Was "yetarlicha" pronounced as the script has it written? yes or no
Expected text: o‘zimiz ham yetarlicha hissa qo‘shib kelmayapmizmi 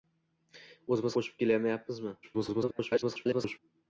no